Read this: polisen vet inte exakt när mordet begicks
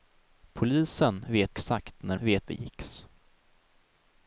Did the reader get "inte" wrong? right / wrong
wrong